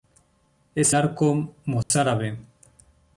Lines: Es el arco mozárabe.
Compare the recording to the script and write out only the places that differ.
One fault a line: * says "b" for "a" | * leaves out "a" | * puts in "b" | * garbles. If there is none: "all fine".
* leaves out "el"